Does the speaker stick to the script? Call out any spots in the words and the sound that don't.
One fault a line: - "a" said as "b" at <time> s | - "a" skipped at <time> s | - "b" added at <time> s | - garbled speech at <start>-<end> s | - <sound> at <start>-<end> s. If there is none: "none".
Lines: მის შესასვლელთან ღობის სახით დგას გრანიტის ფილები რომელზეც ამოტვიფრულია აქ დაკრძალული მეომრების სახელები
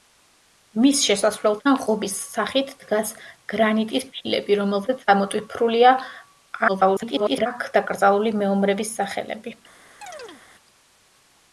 - garbled speech at 6.7-7.5 s
- chirp at 10.0-10.4 s